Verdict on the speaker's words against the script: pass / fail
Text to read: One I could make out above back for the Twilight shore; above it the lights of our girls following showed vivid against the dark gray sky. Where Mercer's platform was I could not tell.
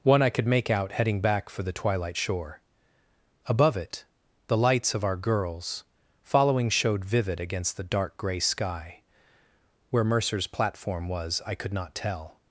fail